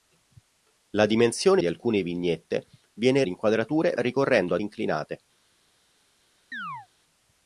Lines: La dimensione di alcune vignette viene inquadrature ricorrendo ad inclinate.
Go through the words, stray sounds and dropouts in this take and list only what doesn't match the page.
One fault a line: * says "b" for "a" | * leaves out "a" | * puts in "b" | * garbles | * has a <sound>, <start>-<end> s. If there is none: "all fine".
* has a chirp, 6.5-6.9 s